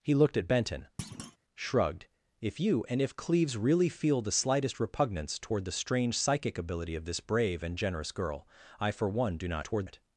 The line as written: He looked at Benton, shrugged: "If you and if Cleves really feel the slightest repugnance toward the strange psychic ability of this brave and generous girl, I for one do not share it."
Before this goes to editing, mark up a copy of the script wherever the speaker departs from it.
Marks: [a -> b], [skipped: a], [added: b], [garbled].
He looked at Benton, shrugged: "If you and if Cleves really feel the slightest repugnance toward the strange psychic ability of this brave and generous girl, I for one do not [share -> toward] it."